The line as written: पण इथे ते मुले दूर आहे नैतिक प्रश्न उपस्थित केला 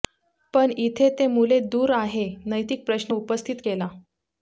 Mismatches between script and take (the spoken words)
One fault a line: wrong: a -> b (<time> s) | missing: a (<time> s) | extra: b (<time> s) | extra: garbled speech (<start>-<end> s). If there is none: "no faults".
no faults